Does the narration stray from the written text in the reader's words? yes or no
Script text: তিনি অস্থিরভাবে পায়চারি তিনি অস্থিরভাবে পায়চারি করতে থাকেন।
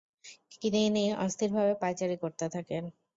yes